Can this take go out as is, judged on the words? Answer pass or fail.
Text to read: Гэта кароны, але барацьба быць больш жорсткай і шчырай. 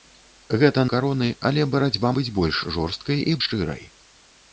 pass